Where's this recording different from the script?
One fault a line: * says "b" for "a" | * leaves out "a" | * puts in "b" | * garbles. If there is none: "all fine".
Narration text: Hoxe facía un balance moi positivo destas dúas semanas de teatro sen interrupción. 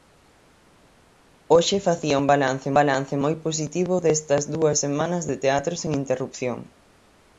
* puts in "balance"